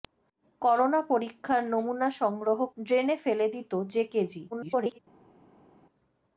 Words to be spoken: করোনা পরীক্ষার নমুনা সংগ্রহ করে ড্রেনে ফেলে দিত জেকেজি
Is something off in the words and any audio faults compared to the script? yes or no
yes